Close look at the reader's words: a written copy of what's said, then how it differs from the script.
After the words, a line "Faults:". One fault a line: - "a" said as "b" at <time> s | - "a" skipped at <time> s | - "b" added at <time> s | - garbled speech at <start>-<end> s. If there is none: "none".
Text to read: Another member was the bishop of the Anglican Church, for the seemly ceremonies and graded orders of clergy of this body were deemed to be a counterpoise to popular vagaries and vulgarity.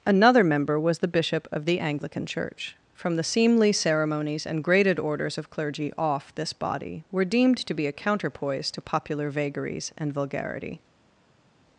Another member was the bishop of the Anglican Church, from the seemly ceremonies and graded orders of clergy off this body were deemed to be a counterpoise to popular vagaries and vulgarity.
Faults:
- "for" said as "from" at 3.0 s
- "of" said as "off" at 6.0 s